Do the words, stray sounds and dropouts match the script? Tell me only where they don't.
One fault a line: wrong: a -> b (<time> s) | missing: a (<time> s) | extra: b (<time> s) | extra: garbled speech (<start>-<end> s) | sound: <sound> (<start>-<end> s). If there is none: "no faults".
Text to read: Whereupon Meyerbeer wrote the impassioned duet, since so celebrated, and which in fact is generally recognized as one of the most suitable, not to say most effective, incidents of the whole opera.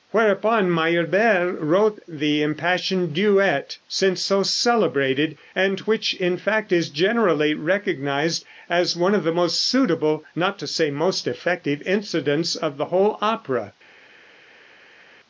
no faults